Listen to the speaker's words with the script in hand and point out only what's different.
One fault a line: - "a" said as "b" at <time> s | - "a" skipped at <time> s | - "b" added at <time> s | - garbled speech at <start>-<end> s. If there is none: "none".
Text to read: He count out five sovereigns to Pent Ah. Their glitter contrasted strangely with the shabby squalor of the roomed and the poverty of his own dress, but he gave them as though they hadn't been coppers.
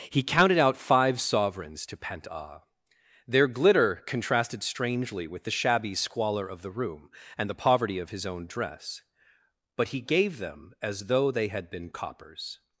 - "count" said as "counted" at 0.2 s
- "roomed" said as "room" at 6.7 s
- "hadn't" said as "had" at 11.5 s